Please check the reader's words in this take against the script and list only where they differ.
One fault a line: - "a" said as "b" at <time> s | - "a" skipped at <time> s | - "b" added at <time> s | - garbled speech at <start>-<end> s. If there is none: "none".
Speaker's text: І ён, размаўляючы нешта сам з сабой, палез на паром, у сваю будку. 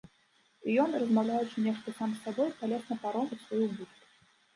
none